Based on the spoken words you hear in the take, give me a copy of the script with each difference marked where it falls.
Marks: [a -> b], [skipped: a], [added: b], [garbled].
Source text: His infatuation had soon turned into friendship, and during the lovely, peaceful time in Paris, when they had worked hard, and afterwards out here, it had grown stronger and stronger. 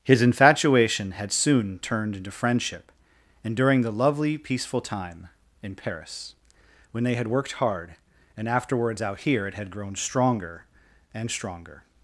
His infatuation had soon turned into friendship, and during the lovely, peaceful time in Paris, when they had worked hard, and afterwards out here, it had grown stronger and stronger.